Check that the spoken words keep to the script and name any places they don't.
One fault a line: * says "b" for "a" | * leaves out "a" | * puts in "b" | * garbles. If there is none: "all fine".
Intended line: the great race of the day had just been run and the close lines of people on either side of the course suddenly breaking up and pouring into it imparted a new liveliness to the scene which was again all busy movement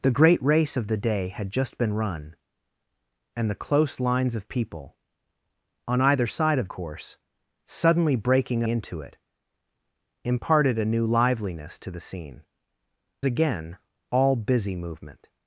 * leaves out "the"
* leaves out "up and pouring"
* leaves out "which was"